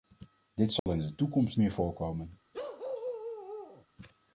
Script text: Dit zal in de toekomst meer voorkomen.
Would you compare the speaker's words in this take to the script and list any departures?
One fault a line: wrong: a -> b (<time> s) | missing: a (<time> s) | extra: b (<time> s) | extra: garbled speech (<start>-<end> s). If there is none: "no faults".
no faults